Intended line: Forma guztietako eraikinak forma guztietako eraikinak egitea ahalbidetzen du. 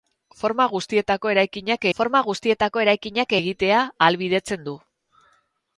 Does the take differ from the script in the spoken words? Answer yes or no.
no